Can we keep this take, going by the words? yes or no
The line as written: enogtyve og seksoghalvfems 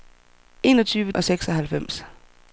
yes